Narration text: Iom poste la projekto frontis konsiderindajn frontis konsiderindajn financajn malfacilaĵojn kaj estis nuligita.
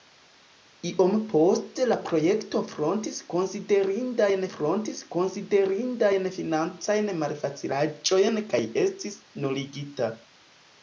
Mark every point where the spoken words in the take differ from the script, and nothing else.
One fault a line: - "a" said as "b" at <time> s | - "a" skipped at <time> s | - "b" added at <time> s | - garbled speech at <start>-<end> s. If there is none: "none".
none